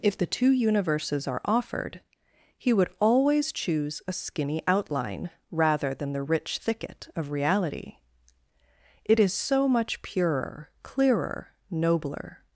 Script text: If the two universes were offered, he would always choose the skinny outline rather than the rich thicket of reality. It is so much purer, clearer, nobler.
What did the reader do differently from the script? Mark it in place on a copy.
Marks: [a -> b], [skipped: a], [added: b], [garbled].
If the two universes [were -> are] offered, he would always choose [the -> a] skinny outline rather than the rich thicket of reality. It is so much purer, clearer, nobler.